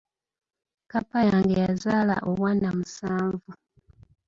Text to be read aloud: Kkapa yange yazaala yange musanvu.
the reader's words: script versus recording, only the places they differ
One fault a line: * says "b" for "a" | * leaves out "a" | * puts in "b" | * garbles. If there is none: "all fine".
* says "obwana" for "yange"